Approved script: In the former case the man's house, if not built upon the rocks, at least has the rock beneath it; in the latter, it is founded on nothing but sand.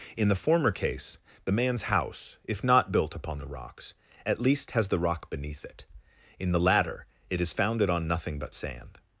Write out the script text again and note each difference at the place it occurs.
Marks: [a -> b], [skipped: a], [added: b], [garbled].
In the former case the man's house, if not built upon the rocks, at least has the rock beneath it; in the latter, it is founded on nothing but sand.